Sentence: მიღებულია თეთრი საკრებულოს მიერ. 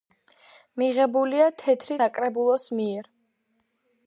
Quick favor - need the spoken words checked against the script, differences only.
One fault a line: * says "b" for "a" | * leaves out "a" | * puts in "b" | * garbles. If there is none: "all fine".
all fine